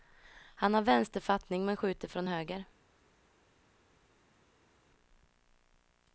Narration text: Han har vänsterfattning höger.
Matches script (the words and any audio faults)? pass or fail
fail